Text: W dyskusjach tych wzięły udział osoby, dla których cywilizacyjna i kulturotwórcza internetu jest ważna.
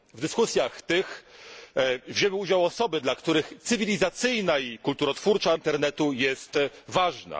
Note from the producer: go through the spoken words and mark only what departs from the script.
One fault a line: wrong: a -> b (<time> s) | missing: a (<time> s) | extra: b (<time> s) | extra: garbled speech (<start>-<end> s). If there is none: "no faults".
no faults